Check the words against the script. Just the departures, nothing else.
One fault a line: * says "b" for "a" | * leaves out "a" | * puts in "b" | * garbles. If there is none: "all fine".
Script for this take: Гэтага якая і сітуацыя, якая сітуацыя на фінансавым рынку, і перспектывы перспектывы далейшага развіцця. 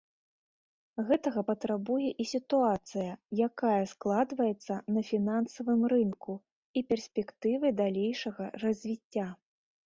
* says "патрабуе" for "якая"
* says "складваецца" for "сітуацыя"
* leaves out "перспектывы"